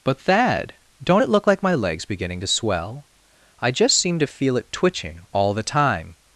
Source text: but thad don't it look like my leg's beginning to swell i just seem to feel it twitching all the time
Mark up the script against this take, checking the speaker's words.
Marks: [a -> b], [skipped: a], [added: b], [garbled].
but thad don't it look like my leg's beginning to swell i just seem to feel it twitching all the time